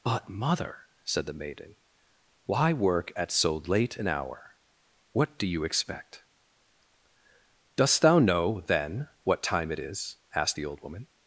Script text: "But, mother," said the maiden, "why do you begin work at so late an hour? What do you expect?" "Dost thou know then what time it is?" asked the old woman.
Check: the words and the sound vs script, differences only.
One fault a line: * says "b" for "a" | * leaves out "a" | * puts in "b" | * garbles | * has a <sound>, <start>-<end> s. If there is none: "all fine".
* leaves out "do you begin"